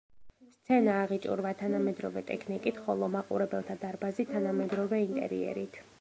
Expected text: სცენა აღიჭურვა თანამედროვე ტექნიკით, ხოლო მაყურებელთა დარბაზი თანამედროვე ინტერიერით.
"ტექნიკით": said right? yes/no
yes